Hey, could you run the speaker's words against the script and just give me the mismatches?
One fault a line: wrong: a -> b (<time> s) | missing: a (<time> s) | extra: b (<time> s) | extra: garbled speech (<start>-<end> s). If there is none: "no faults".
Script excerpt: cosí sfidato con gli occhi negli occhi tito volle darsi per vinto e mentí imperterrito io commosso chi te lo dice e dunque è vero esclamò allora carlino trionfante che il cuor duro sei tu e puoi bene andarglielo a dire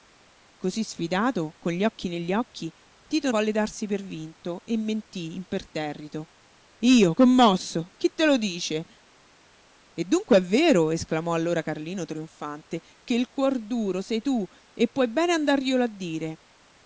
no faults